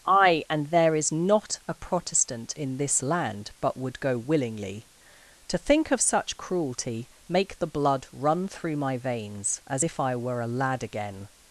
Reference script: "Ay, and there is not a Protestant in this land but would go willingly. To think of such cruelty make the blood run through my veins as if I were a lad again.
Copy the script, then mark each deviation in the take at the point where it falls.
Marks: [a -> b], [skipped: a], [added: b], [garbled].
"Ay, and there is not a Protestant in this land but would go willingly. To think of such cruelty make the blood run through my veins as if I were a lad again.